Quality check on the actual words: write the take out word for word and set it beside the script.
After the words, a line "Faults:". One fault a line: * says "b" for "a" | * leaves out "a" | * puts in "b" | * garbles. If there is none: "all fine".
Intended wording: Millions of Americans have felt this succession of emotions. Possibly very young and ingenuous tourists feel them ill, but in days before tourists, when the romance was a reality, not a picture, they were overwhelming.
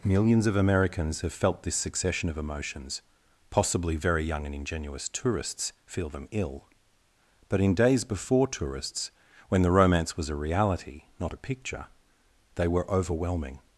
Millions of Americans have felt this succession of emotions. Possibly very young and ingenuous tourists feel them ill, but in days before tourists, when the romance was a reality, not a picture, they were overwhelming.
Faults:
all fine